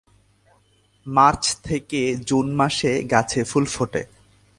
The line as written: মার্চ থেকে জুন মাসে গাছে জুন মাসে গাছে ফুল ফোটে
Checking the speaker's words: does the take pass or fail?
fail